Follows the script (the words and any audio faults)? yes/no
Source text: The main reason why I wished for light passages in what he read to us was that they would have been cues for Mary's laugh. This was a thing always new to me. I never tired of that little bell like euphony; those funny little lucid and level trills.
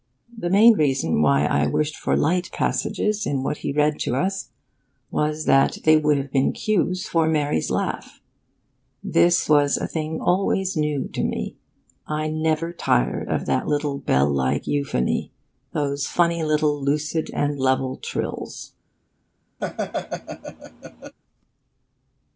no